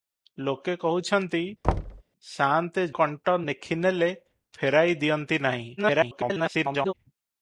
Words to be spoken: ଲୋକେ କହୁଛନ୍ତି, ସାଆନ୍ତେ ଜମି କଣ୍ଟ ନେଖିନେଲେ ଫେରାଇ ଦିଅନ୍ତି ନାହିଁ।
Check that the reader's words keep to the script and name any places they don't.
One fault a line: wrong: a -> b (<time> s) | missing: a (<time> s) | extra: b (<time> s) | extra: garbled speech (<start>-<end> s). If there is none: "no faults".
missing: ଜମି (2.9 s)
extra: garbled speech (5.8-6.9 s)